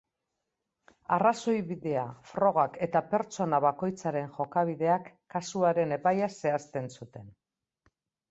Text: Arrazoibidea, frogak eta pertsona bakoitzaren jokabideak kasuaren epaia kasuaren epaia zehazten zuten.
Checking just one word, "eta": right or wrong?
right